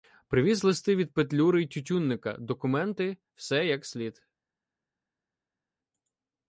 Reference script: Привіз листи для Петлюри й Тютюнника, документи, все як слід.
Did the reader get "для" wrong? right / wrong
wrong